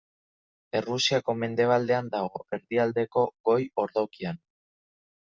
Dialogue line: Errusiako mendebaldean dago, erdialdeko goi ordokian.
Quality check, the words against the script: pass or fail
pass